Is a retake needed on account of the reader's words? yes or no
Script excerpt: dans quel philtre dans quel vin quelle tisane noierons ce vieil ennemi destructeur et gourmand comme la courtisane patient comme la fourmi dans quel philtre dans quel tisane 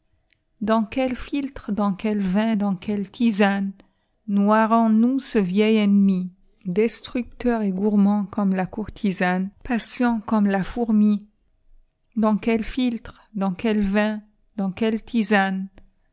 yes